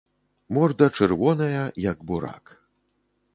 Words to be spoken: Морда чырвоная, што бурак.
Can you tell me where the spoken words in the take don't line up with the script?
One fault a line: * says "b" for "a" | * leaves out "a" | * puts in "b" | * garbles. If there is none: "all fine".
* says "як" for "што"